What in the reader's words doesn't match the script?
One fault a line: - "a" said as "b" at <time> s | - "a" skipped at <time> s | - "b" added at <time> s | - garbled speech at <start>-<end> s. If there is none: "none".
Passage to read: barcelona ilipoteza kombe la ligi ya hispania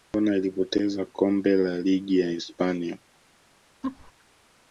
none